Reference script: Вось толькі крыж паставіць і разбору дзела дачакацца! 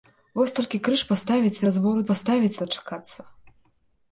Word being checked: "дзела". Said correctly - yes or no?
no